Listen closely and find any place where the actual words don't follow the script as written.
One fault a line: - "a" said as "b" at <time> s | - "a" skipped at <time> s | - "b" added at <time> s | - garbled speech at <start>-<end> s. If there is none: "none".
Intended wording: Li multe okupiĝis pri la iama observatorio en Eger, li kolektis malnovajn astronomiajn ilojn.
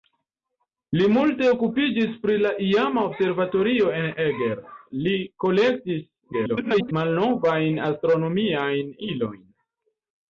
- garbled speech at 6.3-6.9 s